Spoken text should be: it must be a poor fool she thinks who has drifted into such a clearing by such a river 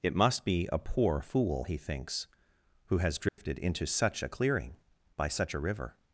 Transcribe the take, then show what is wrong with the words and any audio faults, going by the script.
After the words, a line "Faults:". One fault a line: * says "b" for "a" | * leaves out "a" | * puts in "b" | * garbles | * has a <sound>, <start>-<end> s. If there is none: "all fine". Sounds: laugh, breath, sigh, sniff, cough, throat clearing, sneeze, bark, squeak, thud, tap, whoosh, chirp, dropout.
it must be a poor fool he thinks who has drifted into such a clearing by such a river
Faults:
* says "he" for "she"
* has a dropout, 3.3-3.4 s